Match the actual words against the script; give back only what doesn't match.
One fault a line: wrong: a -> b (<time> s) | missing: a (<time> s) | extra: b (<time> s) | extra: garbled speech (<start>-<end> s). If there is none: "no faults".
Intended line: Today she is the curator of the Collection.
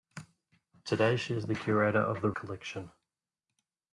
no faults